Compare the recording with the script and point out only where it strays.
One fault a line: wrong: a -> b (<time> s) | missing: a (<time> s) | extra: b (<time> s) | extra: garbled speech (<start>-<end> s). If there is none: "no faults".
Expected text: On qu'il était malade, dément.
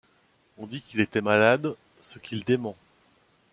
extra: dit (0.7 s)
extra: ce qu'il (2.0 s)